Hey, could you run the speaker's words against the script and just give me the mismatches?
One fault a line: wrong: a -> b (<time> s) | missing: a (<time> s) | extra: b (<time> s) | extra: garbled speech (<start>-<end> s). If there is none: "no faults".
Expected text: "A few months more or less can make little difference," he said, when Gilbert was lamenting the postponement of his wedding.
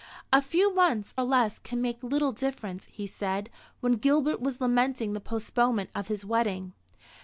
missing: more (1.1 s)